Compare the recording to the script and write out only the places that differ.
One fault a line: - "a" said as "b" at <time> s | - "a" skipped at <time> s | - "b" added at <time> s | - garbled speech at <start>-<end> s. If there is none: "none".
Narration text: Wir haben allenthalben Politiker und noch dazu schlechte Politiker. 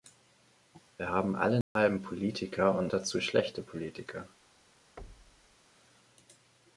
- "noch" skipped at 2.9 s